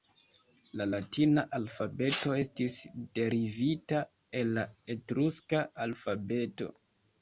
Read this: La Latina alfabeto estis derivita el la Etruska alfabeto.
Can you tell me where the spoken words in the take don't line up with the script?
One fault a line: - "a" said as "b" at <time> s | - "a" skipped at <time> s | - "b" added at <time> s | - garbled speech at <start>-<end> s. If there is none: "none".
none